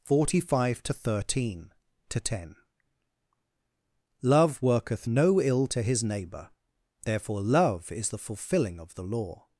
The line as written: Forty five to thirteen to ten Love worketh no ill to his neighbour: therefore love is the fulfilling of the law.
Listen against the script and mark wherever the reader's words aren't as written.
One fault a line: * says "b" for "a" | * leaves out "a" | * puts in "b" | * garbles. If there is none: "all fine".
all fine